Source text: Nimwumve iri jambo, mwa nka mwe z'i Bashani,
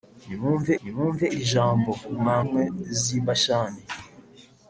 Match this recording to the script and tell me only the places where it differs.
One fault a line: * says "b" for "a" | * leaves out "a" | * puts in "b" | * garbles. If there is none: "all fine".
* puts in "nimwumve"
* leaves out "nka"